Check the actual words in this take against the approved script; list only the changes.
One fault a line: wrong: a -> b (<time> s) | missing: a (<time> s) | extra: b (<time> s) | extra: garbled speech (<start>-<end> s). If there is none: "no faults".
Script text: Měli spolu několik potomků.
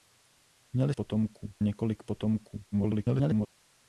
wrong: spolu -> potomků (0.9 s)
extra: garbled speech (2.7-3.5 s)